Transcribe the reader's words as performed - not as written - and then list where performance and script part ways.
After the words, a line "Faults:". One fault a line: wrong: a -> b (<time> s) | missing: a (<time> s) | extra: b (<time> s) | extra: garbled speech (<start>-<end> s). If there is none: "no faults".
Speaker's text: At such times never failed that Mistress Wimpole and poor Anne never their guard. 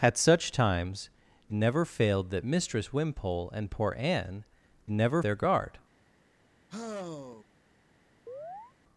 At such times never failed that Mistress Wimpole and poor Anne never their guard.
Faults:
no faults